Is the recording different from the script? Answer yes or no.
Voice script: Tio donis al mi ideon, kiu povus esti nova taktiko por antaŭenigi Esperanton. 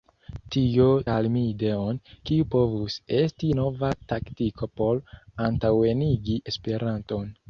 yes